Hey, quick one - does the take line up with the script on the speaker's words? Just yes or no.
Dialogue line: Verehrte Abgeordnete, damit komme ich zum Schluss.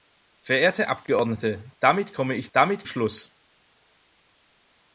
no